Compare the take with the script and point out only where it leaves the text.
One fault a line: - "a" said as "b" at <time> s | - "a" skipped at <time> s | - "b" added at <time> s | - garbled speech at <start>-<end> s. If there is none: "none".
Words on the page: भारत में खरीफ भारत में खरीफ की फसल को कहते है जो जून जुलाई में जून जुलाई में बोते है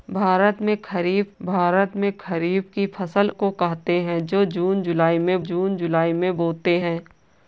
none